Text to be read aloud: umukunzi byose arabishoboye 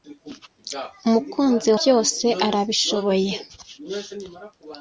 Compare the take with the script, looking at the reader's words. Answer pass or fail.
pass